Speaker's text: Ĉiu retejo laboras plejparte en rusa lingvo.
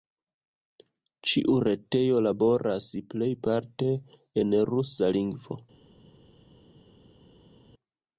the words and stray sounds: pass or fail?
pass